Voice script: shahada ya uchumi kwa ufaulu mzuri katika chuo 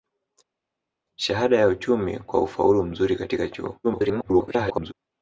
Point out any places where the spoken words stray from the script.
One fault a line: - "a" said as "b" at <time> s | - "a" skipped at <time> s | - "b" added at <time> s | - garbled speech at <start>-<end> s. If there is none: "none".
- garbled speech at 3.8-4.9 s